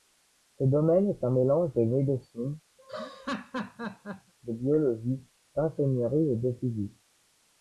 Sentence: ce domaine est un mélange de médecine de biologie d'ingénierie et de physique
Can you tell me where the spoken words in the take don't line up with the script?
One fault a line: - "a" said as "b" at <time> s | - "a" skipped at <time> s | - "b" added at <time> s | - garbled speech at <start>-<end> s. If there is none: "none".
none